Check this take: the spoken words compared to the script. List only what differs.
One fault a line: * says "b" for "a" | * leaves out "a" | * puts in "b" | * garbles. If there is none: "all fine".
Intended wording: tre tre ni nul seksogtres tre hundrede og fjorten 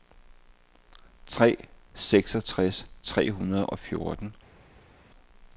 * leaves out "tre ni nul"